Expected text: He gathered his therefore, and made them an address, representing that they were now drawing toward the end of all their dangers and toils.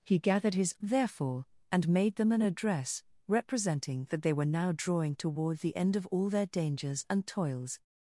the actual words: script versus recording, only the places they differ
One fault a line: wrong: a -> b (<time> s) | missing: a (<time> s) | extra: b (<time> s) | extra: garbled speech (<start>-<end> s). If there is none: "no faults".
no faults